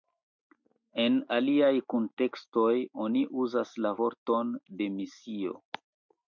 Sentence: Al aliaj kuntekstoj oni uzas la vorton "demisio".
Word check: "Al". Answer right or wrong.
wrong